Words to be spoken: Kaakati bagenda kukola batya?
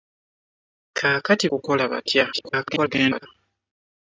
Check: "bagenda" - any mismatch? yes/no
yes